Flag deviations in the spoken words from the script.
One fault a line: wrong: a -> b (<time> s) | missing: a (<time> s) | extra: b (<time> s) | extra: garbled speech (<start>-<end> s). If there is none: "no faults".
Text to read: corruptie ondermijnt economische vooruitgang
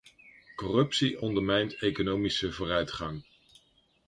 no faults